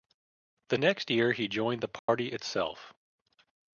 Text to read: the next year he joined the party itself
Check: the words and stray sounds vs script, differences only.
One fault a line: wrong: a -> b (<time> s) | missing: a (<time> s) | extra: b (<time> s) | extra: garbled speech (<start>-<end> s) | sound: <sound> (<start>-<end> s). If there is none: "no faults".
sound: dropout (2.0-2.1 s)